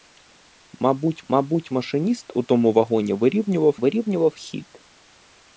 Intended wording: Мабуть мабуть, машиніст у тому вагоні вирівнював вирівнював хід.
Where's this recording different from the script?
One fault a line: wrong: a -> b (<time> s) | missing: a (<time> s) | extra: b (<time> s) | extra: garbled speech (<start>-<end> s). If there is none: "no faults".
no faults